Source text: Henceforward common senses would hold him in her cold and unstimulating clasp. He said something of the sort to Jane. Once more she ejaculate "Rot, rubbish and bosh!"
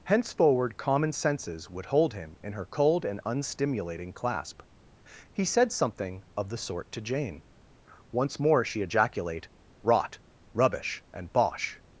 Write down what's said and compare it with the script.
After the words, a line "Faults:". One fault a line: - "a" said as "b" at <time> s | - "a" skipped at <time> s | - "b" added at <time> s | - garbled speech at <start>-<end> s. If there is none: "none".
Henceforward common senses would hold him in her cold and unstimulating clasp. He said something of the sort to Jane. Once more she ejaculate "Rot, rubbish and bosh!"
Faults:
none